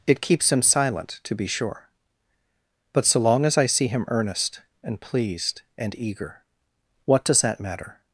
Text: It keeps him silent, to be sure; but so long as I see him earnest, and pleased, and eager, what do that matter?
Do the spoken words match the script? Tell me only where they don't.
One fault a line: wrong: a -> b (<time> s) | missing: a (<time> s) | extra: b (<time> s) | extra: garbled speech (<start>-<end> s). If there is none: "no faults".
wrong: do -> does (7.3 s)